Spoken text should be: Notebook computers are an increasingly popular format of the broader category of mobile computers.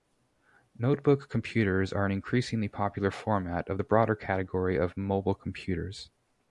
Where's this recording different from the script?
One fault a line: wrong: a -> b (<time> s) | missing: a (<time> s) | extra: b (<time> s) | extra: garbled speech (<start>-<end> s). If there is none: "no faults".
no faults